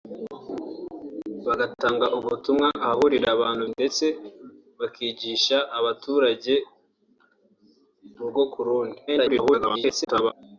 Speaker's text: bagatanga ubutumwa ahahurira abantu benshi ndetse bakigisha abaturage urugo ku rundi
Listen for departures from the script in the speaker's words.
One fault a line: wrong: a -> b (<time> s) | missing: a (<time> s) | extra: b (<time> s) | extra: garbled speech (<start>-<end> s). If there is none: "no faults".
missing: benshi (3.6 s)
extra: garbled speech (9.1-10.3 s)